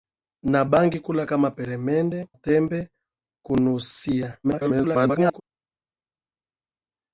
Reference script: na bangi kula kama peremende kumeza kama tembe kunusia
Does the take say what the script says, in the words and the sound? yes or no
no